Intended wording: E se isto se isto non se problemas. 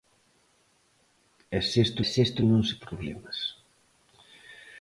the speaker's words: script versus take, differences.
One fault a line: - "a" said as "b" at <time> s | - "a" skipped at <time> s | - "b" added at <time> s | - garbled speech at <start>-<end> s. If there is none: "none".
none